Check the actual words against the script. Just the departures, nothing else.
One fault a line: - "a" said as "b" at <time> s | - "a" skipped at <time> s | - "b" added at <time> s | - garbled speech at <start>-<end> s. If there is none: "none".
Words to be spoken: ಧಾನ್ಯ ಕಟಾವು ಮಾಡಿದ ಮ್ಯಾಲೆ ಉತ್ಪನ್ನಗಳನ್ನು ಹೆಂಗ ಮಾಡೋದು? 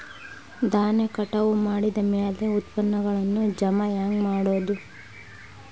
- "ಜಮಾ" added at 3.6 s